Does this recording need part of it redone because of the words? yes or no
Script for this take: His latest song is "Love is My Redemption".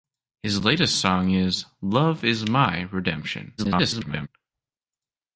yes